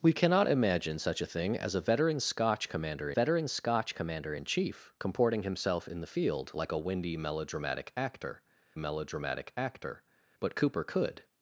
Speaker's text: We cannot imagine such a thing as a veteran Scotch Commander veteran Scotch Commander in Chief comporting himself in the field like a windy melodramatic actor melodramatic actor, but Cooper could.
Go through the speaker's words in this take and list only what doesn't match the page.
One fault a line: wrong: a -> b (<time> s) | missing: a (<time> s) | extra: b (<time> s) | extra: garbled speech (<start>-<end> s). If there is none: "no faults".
no faults